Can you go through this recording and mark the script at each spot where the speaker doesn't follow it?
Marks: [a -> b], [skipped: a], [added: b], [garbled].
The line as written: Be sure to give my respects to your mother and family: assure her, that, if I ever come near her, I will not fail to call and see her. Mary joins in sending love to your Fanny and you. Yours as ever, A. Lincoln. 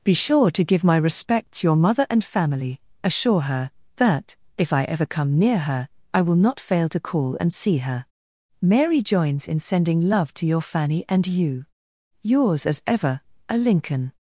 Be sure to give my respects [skipped: to] your mother and family: assure her, that, if I ever come near her, I will not fail to call and see her. Mary joins in sending love to your Fanny and you. Yours as ever, A. Lincoln.